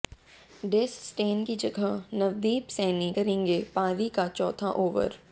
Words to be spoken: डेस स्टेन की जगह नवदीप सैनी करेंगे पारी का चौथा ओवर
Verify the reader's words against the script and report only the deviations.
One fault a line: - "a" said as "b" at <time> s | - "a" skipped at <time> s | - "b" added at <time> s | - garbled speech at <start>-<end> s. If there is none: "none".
none